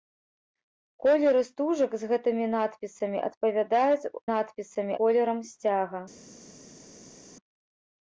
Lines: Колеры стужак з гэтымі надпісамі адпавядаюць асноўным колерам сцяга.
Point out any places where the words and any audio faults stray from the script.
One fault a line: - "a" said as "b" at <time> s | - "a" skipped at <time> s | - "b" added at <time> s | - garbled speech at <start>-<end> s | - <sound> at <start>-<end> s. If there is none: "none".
- "асноўным" said as "надпісамі" at 4.3 s